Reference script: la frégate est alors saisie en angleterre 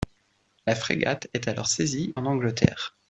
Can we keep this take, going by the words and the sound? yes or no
yes